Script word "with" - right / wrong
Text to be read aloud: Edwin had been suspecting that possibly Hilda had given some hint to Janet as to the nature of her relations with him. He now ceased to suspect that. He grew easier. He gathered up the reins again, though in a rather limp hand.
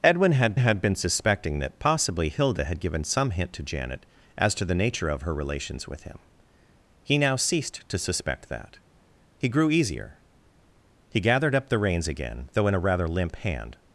right